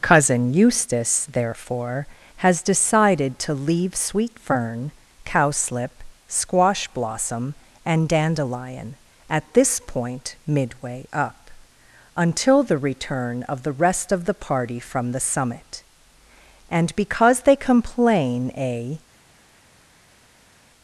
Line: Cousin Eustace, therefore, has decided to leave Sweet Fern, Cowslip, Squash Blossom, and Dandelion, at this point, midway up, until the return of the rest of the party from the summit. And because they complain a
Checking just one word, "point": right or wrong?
right